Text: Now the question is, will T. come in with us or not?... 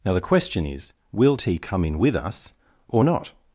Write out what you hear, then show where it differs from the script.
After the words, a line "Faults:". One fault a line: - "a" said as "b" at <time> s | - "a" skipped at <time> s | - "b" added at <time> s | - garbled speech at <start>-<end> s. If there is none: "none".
Now the question is, will T. come in with us or not?...
Faults:
none